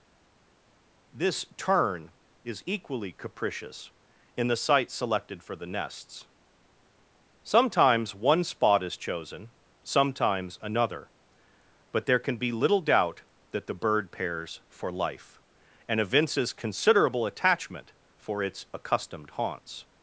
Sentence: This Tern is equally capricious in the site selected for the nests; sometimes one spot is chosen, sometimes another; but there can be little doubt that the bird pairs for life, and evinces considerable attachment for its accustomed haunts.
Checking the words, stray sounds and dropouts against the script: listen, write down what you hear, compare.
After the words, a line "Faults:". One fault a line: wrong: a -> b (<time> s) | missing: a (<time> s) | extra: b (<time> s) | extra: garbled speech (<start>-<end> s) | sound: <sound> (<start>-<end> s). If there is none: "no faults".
This Tern is equally capricious in the site selected for the nests; sometimes one spot is chosen, sometimes another; but there can be little doubt that the bird pairs for life, and evinces considerable attachment for its accustomed haunts.
Faults:
no faults